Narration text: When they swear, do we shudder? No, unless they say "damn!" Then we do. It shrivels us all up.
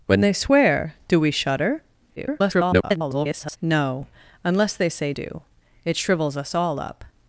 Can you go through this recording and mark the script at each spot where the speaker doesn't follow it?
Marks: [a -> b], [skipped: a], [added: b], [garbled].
When they swear, do we shudder? [garbled] No, unless they say [skipped: "damn!" Then we] do. It shrivels us all up.